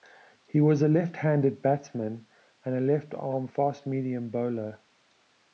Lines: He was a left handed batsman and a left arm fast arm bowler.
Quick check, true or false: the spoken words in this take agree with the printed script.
false